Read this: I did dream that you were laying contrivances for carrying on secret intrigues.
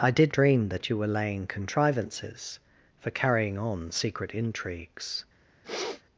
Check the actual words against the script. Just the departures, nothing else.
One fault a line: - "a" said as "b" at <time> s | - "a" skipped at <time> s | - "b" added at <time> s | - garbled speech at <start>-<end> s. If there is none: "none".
none